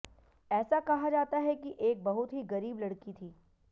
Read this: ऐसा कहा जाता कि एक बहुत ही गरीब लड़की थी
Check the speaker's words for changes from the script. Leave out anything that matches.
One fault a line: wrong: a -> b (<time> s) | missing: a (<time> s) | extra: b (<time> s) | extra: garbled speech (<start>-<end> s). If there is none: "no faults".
extra: है (1.4 s)